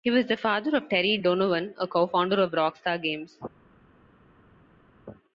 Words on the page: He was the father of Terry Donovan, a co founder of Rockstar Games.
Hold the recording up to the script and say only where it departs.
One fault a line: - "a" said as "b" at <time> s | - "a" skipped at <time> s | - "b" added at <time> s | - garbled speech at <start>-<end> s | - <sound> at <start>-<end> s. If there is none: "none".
none